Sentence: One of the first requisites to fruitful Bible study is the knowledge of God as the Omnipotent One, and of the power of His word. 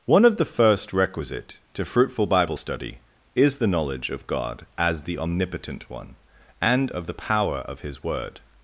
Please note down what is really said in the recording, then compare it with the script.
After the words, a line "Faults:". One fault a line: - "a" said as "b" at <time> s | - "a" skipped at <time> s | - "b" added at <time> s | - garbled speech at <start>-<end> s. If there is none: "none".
One of the first requisite to fruitful Bible study is the knowledge of God as the Omnipotent One, and of the power of His word.
Faults:
- "requisites" said as "requisite" at 0.9 s